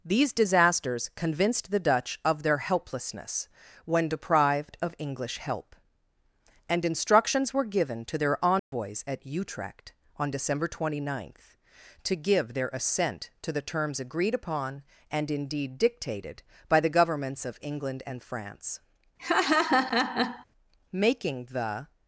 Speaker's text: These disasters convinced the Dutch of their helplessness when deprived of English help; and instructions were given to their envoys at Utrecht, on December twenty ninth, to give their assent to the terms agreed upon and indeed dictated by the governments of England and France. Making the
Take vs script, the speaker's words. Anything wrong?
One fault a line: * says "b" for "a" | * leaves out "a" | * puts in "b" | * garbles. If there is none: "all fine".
all fine